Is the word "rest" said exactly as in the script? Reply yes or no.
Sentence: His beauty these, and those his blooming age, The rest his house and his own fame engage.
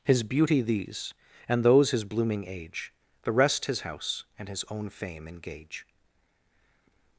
yes